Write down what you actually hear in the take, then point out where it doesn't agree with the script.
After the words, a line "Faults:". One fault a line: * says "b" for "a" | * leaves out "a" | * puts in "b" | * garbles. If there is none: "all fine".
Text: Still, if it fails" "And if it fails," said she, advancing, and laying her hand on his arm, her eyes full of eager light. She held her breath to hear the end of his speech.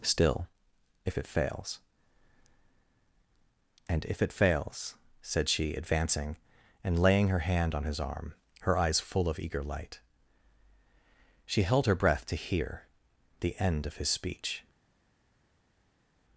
Still, if it fails" "And if it fails," said she, advancing, and laying her hand on his arm, her eyes full of eager light. She held her breath to hear the end of his speech.
Faults:
all fine